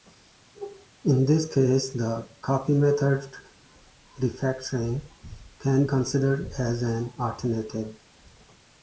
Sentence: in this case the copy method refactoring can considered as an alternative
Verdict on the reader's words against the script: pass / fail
pass